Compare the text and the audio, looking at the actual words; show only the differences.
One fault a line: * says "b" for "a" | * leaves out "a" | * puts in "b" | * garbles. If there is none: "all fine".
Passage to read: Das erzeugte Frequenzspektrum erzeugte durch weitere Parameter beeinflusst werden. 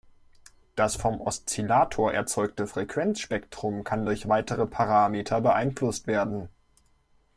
* puts in "vom Oszillator"
* says "kann" for "erzeugte"